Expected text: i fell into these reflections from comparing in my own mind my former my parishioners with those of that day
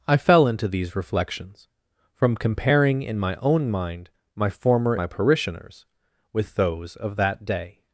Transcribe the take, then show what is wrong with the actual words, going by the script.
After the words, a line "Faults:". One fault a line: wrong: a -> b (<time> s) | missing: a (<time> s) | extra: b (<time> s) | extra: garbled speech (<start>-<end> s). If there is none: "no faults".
i fell into these reflections from comparing in my own mind my former my parishioners with those of that day
Faults:
no faults